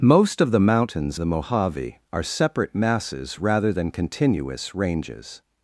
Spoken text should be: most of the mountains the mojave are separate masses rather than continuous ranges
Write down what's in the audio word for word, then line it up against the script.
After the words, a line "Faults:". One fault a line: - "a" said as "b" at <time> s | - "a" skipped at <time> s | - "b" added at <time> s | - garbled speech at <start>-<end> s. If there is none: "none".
most of the mountains the mojave are separate masses rather than continuous ranges
Faults:
none